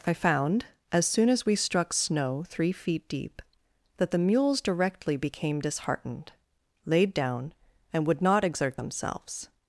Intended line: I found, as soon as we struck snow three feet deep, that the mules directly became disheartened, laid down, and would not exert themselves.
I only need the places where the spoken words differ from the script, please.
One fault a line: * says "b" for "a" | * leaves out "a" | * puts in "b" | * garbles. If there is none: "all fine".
all fine